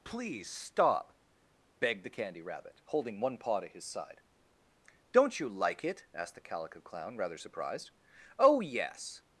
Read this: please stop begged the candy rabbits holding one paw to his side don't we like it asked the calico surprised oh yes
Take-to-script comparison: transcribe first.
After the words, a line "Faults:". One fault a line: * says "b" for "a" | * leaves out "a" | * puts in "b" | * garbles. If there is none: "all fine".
please stop begged the candy rabbit holding one paw to his side don't you like it asked the calico clown rather surprised oh yes
Faults:
* says "rabbit" for "rabbits"
* says "you" for "we"
* puts in "clown rather"